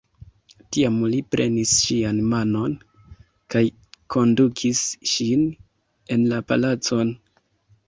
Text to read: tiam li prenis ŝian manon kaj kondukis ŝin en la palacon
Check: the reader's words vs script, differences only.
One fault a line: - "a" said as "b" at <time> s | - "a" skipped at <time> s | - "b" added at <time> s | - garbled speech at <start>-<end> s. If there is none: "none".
none